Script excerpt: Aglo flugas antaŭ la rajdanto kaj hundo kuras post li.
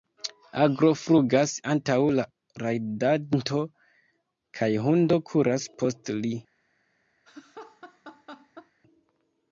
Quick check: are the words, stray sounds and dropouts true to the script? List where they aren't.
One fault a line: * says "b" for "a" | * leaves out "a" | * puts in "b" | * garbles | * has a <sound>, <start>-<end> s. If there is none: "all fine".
* has a laugh, 7.3-8.7 s